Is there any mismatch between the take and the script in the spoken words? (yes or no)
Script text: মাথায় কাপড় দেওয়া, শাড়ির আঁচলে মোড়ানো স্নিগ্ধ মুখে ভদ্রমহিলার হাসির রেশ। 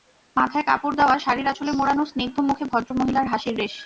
no